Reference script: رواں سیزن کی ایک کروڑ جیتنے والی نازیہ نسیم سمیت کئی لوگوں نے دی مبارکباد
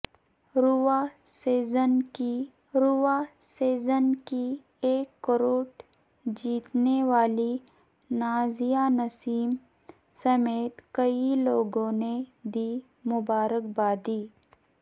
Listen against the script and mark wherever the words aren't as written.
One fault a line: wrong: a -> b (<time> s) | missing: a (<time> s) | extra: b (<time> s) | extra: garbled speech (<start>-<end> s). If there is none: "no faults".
extra: رواں سیزن کی (2.7 s)